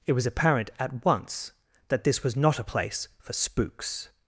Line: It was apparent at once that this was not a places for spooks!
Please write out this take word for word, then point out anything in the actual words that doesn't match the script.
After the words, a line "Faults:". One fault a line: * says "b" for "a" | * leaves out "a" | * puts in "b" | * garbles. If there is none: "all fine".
It was apparent at once that this was not a place for spooks!
Faults:
* says "place" for "places"